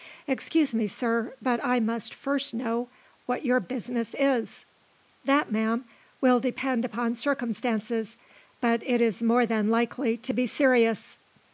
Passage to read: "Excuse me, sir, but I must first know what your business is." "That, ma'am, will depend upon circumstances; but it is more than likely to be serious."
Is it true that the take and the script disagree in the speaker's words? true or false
false